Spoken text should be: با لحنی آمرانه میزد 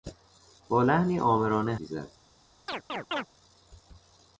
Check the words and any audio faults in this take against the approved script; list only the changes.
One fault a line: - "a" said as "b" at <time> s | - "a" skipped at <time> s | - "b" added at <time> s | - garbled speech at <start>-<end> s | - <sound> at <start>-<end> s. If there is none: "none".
- chirp at 2.7-3.3 s